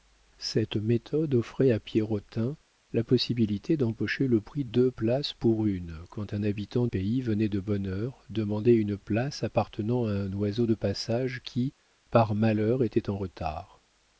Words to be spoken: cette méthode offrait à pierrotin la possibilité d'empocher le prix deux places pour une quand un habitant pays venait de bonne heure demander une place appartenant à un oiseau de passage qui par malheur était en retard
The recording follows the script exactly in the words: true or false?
true